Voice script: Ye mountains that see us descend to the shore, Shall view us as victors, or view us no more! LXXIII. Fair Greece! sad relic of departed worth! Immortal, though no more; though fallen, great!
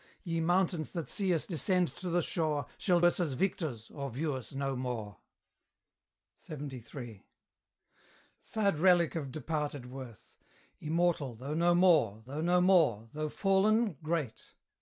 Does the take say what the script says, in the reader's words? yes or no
no